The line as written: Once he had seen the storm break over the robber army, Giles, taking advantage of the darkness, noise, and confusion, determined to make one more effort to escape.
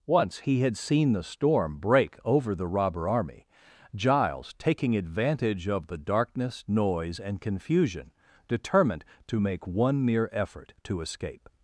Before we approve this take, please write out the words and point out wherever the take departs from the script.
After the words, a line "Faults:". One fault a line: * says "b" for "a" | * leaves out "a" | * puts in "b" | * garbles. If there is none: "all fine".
Once he had seen the storm break over the robber army, Giles, taking advantage of the darkness, noise, and confusion, determined to make one mere effort to escape.
Faults:
* says "mere" for "more"